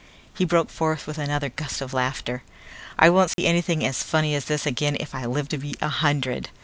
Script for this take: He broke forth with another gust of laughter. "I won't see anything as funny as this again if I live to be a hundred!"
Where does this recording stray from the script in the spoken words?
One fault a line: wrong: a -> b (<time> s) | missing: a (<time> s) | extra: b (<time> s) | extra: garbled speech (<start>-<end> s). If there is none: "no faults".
no faults